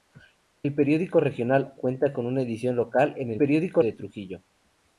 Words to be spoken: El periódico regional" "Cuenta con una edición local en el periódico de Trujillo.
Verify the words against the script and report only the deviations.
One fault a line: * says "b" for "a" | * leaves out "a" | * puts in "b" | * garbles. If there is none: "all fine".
all fine